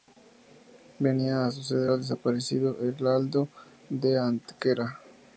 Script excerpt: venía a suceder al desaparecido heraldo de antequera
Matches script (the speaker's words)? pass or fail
pass